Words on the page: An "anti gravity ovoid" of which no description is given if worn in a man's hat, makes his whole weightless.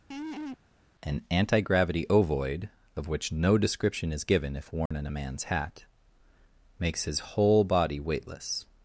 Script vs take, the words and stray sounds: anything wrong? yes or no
yes